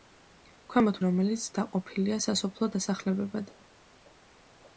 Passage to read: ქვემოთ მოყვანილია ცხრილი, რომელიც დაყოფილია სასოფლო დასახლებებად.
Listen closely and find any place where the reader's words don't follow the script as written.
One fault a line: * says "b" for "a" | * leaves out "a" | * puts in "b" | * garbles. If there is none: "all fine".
* leaves out "მოყვანილია ცხრილი"